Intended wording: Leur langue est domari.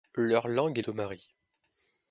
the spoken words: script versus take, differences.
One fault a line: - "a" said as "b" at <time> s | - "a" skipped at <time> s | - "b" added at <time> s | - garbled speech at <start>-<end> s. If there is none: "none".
none